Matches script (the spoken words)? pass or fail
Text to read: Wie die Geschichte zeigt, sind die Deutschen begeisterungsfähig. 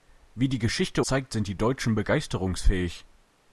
pass